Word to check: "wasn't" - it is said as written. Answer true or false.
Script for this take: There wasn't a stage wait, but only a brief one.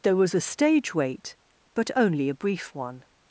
false